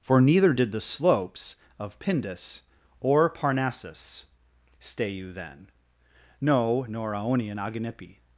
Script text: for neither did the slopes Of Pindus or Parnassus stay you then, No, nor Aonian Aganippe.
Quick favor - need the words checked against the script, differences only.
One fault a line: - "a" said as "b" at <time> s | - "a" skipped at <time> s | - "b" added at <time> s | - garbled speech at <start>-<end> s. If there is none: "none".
none